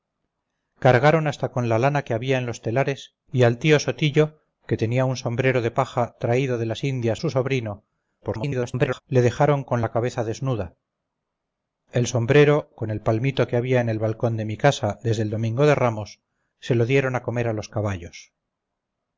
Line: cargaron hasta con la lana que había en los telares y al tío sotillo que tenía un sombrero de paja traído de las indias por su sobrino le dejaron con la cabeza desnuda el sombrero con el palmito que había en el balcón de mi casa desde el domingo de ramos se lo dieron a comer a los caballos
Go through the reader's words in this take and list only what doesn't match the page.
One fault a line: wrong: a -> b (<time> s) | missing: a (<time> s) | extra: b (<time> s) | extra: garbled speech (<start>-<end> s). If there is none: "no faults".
missing: por (7.2 s)
extra: garbled speech (8.2-9.0 s)